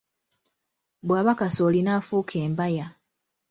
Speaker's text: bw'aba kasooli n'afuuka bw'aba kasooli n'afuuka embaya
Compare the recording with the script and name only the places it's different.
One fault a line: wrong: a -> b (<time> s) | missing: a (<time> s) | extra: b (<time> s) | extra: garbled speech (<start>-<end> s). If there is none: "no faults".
missing: bw'aba kasooli n'afuuka (2.4 s)